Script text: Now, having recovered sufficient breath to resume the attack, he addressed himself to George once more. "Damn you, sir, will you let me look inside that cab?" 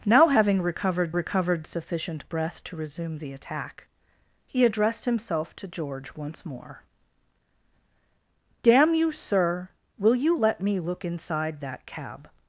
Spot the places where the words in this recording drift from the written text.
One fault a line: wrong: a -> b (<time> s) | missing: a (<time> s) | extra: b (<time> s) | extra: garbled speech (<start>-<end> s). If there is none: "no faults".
extra: recovered (1.1 s)